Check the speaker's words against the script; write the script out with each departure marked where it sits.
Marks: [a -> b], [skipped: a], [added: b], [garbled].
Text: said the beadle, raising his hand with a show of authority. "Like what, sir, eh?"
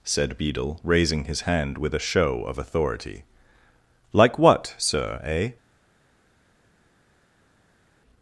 said [skipped: the] beadle, raising his hand with a show of authority. "Like what, sir, eh?"